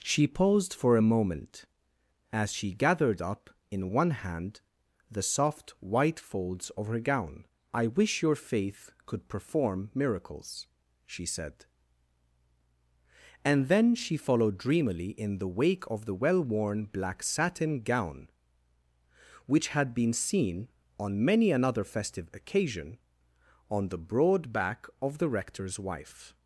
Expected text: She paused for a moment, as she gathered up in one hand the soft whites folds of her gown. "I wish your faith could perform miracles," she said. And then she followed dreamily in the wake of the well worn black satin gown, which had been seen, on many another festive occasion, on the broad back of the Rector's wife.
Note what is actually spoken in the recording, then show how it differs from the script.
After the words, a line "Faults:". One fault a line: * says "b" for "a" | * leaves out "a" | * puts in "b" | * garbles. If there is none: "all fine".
She paused for a moment, as she gathered up in one hand the soft white folds of her gown. "I wish your faith could perform miracles," she said. And then she followed dreamily in the wake of the well worn black satin gown, which had been seen, on many another festive occasion, on the broad back of the Rector's wife.
Faults:
* says "white" for "whites"